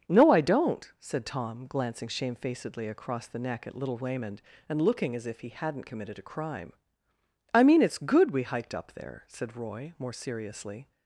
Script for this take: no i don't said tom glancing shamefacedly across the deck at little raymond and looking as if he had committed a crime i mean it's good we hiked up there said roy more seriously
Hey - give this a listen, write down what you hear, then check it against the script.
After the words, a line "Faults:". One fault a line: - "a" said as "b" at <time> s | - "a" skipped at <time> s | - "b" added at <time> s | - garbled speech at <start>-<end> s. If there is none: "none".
no i don't said tom glancing shamefacedly across the neck at little raymond and looking as if he hadn't committed a crime i mean it's good we hiked up there said roy more seriously
Faults:
- "deck" said as "neck" at 3.4 s
- "had" said as "hadn't" at 5.5 s